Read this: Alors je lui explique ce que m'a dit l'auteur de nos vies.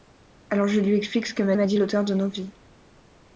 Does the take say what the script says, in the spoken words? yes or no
no